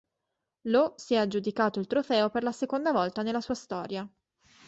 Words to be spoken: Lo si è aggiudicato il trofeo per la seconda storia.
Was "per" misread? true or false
false